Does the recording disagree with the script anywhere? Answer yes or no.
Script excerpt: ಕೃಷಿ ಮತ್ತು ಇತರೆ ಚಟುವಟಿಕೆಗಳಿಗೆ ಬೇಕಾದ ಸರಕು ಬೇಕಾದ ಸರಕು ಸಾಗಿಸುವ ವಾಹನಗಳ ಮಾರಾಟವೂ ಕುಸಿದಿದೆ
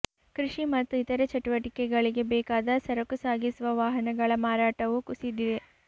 yes